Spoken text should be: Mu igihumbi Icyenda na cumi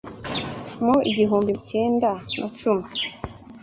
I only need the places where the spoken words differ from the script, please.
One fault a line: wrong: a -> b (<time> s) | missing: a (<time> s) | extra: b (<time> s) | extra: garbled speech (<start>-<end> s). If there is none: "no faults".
no faults